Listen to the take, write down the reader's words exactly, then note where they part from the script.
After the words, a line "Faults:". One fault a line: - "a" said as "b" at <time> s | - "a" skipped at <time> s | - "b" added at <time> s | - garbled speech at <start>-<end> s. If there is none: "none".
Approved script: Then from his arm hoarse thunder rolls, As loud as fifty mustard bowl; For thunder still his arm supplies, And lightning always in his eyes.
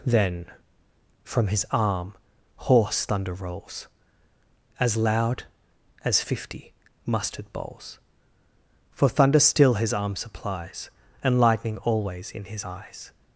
Then from his arm hoarse thunder rolls, As loud as fifty mustard bowls; For thunder still his arm supplies, And lightning always in his eyes.
Faults:
- "bowl" said as "bowls" at 7.5 s